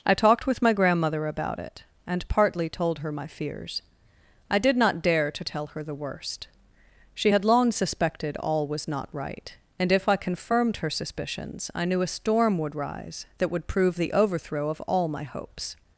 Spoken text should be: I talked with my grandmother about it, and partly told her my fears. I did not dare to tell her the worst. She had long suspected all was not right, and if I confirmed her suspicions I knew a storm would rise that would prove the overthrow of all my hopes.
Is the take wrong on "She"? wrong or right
right